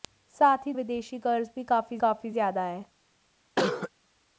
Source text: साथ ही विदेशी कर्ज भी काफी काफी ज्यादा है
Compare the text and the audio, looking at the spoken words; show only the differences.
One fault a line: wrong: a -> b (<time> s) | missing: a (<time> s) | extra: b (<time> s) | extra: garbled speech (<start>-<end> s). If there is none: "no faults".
no faults